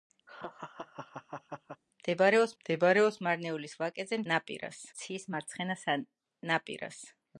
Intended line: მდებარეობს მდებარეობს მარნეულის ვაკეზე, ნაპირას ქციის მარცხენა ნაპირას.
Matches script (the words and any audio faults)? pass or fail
fail